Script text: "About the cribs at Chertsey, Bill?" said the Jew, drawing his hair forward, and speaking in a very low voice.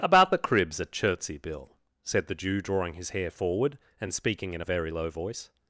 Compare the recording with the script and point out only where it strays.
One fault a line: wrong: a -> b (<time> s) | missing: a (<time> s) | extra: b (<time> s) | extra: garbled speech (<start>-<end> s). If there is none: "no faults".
no faults